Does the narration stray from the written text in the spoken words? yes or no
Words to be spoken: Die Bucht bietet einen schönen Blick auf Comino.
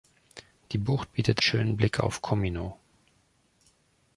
yes